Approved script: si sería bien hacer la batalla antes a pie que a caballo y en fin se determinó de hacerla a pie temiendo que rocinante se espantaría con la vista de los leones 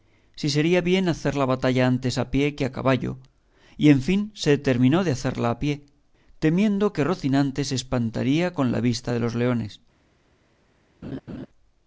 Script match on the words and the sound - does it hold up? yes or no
no